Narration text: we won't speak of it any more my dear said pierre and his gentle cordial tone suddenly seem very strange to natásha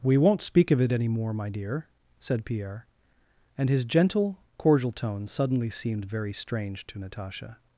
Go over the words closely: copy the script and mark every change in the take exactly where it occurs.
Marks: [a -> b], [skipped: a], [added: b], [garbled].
we won't speak of it any more my dear said pierre and his gentle cordial tone suddenly [seem -> seemed] very strange to natásha